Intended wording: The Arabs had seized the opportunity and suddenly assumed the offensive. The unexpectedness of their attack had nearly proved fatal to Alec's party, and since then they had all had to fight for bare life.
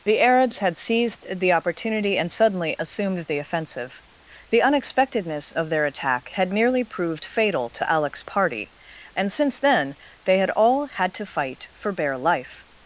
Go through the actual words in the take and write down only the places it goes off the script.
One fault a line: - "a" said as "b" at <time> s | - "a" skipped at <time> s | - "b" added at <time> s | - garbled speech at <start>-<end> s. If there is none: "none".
none